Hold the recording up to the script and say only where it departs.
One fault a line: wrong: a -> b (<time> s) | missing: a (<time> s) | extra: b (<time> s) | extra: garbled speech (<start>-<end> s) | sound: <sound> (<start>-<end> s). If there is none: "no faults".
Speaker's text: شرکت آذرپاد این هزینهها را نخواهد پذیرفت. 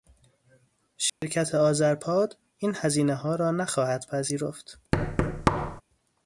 sound: dropout (1.1-1.2 s)
sound: thud (4.9-5.8 s)